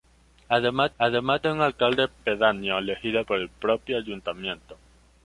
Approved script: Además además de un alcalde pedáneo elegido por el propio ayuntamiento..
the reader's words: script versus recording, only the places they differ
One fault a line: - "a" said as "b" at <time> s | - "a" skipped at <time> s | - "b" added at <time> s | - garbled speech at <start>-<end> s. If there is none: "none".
none